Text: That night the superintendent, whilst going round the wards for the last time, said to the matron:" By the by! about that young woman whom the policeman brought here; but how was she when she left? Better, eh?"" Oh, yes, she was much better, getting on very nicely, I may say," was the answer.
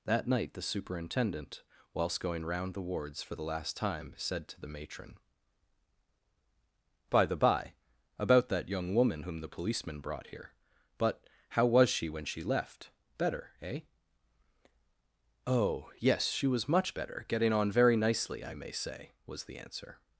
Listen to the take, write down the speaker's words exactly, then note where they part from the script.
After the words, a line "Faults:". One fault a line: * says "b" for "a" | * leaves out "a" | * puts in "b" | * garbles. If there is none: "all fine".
That night the superintendent, whilst going round the wards for the last time, said to the matron:" By the by! about that young woman whom the policeman brought here; but how was she when she left? Better, eh?"" Oh, yes, she was much better, getting on very nicely, I may say," was the answer.
Faults:
all fine